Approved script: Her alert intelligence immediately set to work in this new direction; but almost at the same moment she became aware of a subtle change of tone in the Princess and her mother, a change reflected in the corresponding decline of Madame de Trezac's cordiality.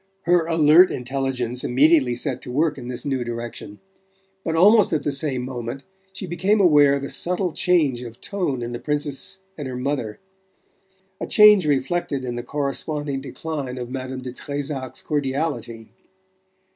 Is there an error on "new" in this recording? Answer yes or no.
no